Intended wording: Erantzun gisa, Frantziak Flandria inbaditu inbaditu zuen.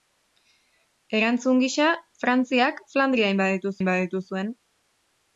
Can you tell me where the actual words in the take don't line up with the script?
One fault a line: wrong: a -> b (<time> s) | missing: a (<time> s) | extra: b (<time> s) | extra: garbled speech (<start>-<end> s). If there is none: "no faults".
no faults